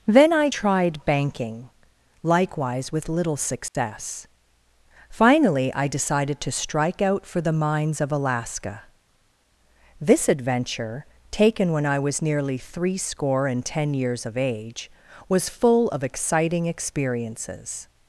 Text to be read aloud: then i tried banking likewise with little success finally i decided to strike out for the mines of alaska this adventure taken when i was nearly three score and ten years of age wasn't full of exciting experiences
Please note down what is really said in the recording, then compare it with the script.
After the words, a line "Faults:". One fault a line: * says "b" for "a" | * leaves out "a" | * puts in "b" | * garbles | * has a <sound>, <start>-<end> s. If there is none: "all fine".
then i tried banking likewise with little success finally i decided to strike out for the mines of alaska this adventure taken when i was nearly three score and ten years of age was full of exciting experiences
Faults:
* has a dropout, 3.7-3.7 s
* says "was" for "wasn't"